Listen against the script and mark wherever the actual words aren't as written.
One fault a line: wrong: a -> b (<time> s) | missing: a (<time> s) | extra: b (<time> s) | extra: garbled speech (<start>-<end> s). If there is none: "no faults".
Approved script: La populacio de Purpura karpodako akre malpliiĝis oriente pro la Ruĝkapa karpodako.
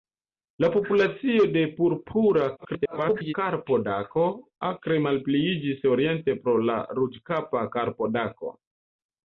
extra: garbled speech (2.6-3.3 s)